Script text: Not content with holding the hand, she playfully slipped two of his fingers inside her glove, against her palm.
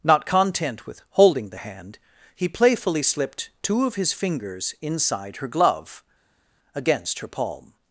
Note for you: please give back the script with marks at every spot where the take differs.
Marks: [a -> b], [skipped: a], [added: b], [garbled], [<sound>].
Not content with holding the hand, [she -> he] playfully slipped two of his fingers inside her glove, against her palm.